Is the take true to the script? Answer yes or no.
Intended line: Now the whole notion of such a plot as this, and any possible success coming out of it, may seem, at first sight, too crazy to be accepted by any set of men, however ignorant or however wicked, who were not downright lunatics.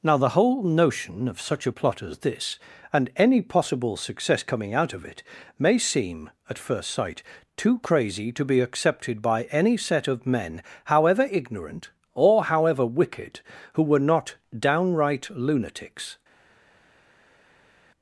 yes